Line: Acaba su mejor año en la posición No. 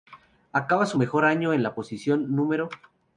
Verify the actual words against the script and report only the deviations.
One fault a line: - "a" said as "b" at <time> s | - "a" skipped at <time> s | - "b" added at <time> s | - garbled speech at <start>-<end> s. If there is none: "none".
none